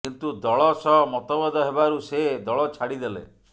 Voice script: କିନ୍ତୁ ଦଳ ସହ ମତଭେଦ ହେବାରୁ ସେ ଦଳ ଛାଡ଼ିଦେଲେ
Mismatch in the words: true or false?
false